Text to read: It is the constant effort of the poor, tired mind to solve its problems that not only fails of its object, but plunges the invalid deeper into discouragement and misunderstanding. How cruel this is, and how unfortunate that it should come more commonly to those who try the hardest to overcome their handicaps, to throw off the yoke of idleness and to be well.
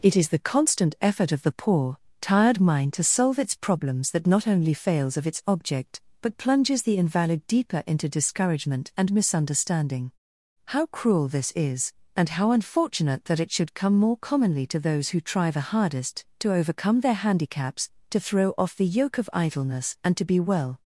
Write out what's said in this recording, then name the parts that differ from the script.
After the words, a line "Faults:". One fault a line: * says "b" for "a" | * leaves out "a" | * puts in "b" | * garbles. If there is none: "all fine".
It is the constant effort of the poor, tired mind to solve its problems that not only fails of its object, but plunges the invalid deeper into discouragement and misunderstanding. How cruel this is, and how unfortunate that it should come more commonly to those who try the hardest to overcome their handicaps, to throw off the yoke of idleness and to be well.
Faults:
all fine